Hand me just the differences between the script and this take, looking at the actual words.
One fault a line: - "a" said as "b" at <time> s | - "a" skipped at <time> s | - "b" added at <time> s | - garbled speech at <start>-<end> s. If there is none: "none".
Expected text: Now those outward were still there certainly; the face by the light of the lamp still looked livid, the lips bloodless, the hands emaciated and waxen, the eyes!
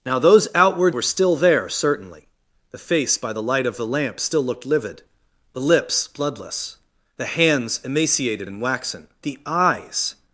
none